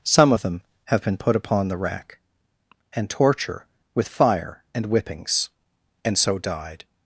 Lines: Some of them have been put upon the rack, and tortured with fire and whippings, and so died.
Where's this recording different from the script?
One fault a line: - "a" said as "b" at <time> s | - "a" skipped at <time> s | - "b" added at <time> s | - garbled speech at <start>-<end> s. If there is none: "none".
- "tortured" said as "torture" at 3.1 s